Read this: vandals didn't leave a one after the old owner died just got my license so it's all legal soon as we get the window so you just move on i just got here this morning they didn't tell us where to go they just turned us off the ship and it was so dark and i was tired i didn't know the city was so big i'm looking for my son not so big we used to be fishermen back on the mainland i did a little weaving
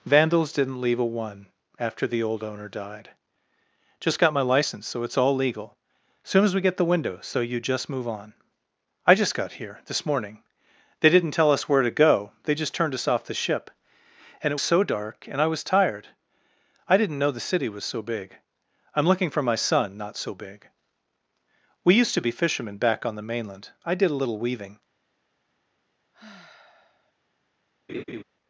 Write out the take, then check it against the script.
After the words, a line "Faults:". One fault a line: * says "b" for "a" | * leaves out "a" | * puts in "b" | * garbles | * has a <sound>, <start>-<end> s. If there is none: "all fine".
vandals didn't leave a one after the old owner died just got my license so it's all legal soon as we get the window so you just move on i just got here this morning they didn't tell us where to go they just turned us off the ship and it so dark and i was tired i didn't know the city was so big i'm looking for my son not so big we used to be fishermen back on the mainland i did a little weaving
Faults:
* leaves out "was"
* has a sigh, 26.1-27.1 s
* has a laugh, 27.9-28.2 s